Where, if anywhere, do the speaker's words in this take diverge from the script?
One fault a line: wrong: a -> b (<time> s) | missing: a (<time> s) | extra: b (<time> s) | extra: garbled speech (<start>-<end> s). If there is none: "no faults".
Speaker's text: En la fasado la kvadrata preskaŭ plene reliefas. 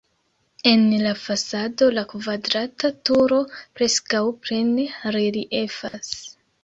extra: turo (3.1 s)